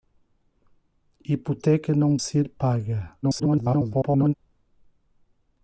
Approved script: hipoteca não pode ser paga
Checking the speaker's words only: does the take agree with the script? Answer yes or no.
no